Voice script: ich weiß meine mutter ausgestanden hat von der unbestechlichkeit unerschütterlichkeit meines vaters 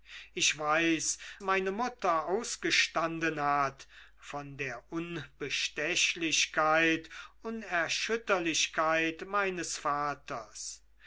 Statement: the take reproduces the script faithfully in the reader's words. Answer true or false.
true